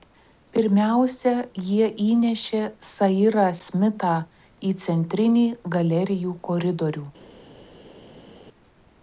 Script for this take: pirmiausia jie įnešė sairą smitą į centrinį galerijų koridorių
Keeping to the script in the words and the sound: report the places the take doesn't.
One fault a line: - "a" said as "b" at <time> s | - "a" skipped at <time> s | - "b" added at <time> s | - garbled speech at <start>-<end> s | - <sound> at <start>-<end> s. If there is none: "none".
none